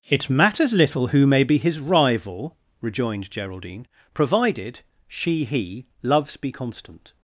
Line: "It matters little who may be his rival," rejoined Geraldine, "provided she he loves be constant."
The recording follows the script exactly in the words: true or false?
true